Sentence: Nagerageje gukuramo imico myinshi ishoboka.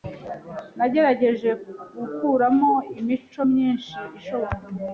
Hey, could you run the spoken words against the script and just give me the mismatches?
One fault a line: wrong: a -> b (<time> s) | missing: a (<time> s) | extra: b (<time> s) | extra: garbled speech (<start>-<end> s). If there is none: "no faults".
no faults